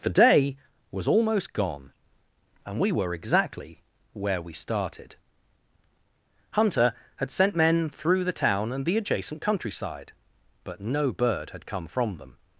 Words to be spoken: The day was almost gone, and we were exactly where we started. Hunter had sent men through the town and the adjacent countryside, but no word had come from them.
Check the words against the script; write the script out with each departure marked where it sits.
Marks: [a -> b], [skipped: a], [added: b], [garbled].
The day was almost gone, and we were exactly where we started. Hunter had sent men through the town and the adjacent countryside, but no [word -> bird] had come from them.